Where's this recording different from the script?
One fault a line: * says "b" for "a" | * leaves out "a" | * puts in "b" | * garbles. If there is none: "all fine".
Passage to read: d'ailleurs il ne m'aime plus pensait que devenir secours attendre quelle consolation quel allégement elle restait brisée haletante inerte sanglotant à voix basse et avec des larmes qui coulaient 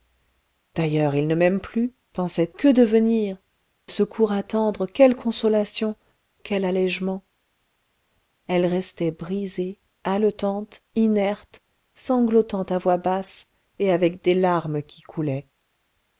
all fine